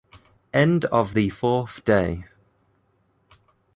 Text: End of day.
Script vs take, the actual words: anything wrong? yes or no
yes